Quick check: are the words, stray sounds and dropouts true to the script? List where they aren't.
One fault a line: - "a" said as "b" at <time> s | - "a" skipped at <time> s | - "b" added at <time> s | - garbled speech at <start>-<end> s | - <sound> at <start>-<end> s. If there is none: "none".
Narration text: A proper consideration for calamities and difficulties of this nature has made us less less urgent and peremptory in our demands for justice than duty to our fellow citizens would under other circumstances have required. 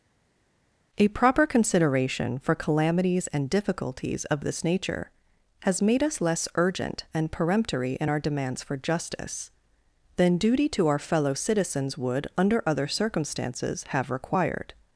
- "less" skipped at 6.5 s